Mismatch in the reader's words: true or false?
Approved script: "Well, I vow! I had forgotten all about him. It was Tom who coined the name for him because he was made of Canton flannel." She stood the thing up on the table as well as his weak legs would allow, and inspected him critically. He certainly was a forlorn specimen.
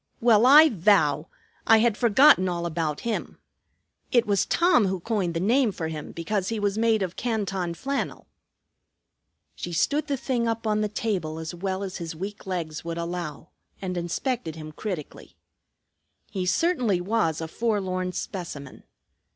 false